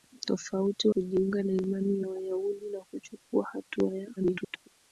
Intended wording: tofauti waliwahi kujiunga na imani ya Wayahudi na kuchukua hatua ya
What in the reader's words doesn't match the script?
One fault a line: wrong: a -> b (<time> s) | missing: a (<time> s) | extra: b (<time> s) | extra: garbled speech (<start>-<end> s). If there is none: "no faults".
missing: waliwahi (0.9 s)
extra: garbled speech (4.2-4.7 s)